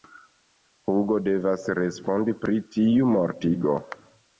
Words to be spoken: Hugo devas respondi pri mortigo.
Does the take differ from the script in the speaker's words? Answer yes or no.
yes